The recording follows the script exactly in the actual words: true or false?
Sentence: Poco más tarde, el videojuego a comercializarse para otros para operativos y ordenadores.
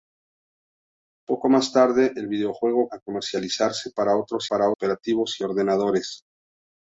true